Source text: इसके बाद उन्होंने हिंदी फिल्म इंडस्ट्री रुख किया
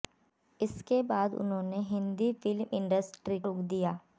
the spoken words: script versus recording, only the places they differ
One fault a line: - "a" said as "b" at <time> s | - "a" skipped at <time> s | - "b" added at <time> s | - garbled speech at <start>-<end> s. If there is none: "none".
none